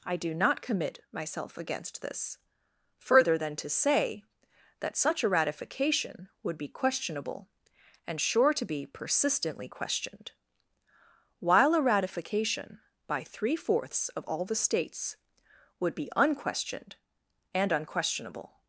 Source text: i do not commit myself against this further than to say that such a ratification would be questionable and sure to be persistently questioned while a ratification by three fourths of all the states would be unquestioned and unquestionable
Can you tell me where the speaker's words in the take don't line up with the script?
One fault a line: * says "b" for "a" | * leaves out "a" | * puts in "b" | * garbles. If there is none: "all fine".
all fine